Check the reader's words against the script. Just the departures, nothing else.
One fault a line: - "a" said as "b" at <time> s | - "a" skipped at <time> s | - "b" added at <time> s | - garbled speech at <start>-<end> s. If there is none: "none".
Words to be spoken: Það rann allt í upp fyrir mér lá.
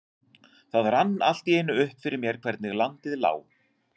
- "einu" added at 1.6 s
- "hvernig landið" added at 2.4 s